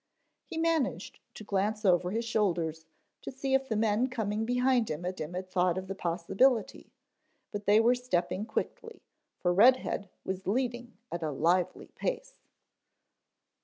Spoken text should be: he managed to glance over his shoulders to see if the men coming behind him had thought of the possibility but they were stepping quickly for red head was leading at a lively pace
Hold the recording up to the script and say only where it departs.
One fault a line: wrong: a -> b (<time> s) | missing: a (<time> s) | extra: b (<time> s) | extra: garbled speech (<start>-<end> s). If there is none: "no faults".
extra: him had (5.2 s)